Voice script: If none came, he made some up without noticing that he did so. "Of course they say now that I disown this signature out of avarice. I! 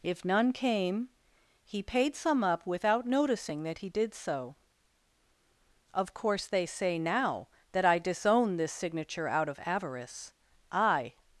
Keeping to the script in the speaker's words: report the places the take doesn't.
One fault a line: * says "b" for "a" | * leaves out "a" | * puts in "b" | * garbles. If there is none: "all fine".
* says "paid" for "made"